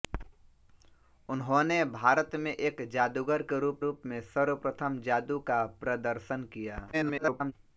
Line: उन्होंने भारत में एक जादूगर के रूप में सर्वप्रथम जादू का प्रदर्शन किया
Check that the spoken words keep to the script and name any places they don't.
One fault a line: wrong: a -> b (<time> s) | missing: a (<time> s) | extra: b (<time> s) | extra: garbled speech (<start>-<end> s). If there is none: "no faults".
extra: रूप (3.8 s)
extra: garbled speech (6.9-7.5 s)